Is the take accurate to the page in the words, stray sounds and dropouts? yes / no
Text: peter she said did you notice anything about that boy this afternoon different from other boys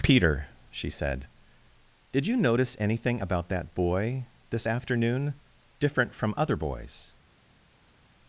yes